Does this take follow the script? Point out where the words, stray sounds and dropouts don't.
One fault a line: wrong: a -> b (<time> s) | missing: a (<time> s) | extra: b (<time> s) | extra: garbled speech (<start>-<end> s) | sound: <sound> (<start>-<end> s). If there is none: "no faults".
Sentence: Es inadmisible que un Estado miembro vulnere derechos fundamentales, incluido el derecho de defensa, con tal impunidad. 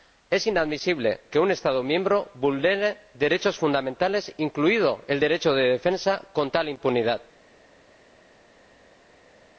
no faults